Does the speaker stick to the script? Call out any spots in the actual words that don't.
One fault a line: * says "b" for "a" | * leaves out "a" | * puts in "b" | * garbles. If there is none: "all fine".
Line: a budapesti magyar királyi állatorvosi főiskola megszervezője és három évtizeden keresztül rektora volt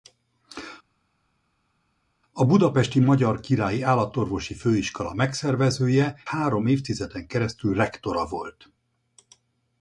* leaves out "és"